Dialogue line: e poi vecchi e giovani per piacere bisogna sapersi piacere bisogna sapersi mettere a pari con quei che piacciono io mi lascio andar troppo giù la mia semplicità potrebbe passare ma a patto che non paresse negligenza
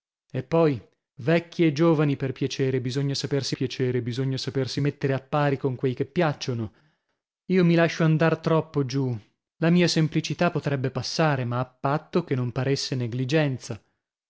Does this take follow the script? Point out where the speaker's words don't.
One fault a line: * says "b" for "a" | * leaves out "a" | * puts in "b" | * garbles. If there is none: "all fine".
all fine